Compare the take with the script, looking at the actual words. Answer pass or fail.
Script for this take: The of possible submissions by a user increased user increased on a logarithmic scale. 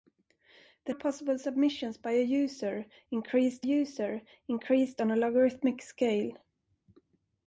pass